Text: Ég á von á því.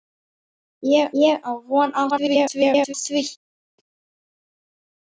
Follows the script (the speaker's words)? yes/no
no